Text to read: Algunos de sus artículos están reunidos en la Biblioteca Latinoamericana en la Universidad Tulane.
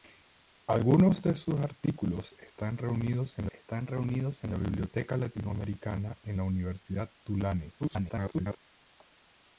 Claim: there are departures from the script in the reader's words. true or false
true